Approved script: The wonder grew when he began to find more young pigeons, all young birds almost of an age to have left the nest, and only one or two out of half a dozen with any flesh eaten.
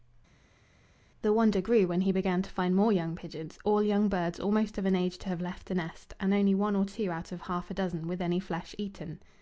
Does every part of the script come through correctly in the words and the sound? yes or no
yes